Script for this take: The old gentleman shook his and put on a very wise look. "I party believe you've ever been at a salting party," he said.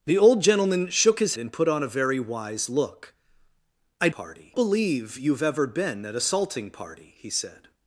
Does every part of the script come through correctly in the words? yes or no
yes